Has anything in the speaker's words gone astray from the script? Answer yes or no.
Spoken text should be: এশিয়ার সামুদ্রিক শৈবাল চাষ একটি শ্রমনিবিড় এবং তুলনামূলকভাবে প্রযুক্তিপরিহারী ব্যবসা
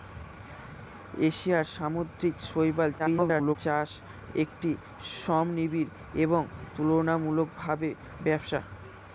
yes